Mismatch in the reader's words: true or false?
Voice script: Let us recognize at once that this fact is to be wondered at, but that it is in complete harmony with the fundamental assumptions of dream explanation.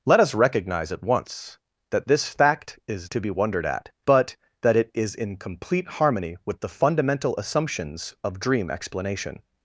false